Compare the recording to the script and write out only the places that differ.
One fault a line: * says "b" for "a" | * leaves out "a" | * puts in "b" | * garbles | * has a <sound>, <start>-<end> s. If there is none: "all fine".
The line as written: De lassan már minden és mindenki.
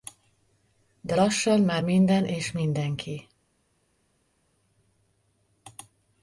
all fine